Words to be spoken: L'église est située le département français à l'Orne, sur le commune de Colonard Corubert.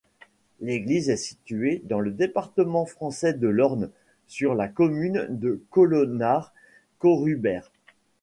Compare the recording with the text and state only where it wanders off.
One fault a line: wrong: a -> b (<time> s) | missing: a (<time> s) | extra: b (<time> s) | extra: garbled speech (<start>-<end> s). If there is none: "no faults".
extra: dans (1.8 s)
wrong: à -> de (3.3 s)
wrong: le -> la (4.5 s)